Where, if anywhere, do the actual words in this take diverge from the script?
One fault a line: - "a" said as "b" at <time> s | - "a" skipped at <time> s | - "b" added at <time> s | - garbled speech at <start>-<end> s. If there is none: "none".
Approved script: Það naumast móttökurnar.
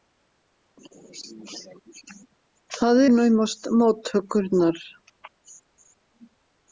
none